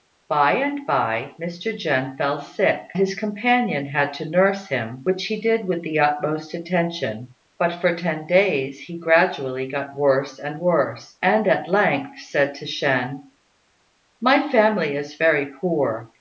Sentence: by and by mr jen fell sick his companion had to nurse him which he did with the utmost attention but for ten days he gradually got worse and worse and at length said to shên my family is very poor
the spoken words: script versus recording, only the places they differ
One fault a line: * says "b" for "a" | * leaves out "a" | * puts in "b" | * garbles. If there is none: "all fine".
all fine